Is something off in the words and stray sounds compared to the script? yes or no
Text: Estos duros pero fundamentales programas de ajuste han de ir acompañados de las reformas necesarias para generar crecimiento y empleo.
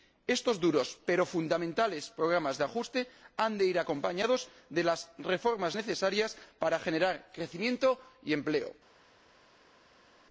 no